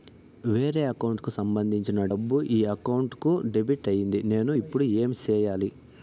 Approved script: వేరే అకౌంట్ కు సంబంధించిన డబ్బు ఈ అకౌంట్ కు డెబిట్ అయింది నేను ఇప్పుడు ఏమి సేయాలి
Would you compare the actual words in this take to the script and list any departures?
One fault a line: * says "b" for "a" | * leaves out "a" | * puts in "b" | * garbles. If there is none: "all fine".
all fine